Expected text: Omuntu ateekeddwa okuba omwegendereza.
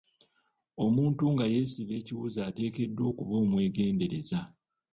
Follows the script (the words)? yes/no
no